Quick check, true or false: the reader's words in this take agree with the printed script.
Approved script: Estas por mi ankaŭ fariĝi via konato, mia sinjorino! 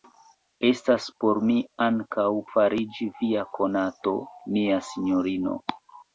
true